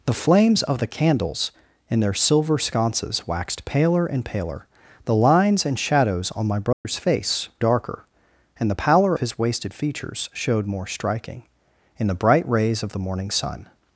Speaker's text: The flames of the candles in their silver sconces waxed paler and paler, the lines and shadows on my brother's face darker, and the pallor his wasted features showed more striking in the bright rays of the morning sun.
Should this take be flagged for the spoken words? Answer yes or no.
no